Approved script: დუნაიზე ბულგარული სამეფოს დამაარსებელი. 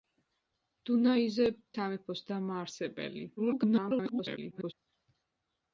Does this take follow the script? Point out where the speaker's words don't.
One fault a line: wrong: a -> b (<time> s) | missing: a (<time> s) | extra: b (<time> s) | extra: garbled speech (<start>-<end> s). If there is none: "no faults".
missing: ბულგარული (1.4 s)
extra: garbled speech (3.4-4.7 s)